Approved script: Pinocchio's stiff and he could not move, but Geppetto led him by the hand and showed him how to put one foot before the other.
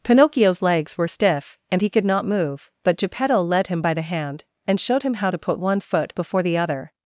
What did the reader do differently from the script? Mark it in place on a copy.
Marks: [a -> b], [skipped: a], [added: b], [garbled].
Pinocchio's [added: legs were] stiff and he could not move, but Geppetto led him by the hand and showed him how to put one foot before the other.